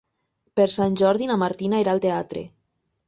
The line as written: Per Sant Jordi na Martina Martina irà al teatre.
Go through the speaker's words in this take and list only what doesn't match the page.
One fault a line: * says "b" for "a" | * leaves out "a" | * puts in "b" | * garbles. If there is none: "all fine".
* leaves out "Martina"